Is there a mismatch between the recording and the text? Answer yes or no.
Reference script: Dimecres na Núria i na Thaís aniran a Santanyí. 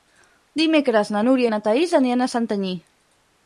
no